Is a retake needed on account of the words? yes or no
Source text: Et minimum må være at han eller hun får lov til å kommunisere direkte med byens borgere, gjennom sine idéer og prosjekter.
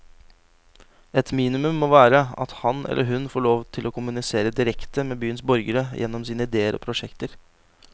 no